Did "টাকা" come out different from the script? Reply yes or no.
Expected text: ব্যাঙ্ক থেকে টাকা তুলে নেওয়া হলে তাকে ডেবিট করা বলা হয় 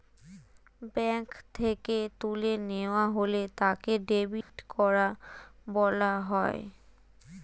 yes